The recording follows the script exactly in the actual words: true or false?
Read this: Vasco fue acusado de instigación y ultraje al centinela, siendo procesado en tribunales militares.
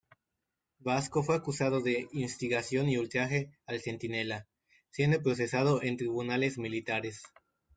true